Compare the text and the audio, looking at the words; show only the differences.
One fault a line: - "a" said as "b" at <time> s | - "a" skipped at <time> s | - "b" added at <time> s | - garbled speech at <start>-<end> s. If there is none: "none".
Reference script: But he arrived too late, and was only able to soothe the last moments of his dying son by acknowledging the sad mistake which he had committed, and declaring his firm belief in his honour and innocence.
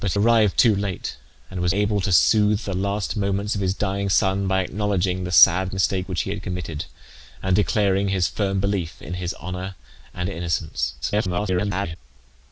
- "he" skipped at 0.1 s
- "only" skipped at 1.7 s
- garbled speech at 11.0-12.0 s